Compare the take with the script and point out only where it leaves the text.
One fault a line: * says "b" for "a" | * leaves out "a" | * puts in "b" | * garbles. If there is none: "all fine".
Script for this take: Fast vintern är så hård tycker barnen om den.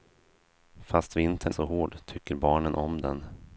* leaves out "är"